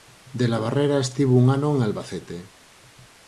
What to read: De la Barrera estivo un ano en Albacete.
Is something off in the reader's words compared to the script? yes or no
no